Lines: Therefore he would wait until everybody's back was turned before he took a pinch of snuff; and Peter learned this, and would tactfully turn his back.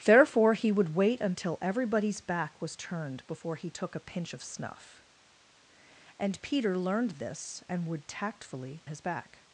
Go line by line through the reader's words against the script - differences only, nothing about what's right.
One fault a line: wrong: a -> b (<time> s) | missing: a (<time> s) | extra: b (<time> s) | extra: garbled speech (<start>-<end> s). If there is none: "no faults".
missing: turn (8.8 s)